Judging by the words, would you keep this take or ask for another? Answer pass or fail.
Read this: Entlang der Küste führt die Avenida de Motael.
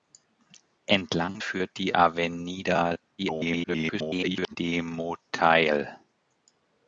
fail